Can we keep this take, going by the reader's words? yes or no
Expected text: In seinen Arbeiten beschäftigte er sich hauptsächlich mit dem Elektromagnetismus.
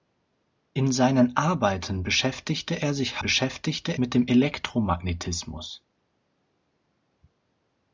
no